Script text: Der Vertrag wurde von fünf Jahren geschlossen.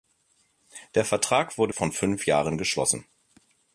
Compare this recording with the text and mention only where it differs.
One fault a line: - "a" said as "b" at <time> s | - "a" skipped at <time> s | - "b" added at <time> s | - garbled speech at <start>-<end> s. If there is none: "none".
none